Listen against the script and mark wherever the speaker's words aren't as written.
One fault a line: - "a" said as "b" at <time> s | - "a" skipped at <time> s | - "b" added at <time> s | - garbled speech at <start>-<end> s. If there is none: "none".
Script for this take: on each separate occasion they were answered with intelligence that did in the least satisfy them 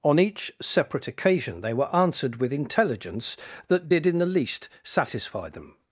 none